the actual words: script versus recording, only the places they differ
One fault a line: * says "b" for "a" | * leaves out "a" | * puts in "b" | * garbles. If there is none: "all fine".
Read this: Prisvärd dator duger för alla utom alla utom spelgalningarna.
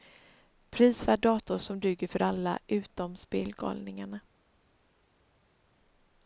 * puts in "som"
* leaves out "alla utom"